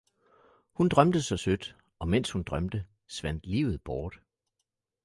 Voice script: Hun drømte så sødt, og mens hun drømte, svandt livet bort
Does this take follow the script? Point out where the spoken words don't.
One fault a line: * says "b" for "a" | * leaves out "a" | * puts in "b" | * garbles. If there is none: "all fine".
all fine